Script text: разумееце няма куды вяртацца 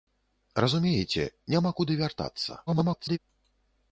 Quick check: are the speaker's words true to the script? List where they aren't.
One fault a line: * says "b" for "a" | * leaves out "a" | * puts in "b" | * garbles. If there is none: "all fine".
* garbles